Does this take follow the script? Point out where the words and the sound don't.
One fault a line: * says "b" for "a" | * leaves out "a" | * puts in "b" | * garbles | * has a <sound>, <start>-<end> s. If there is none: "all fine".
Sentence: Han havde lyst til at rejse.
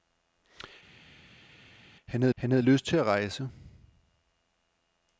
* puts in "han havde"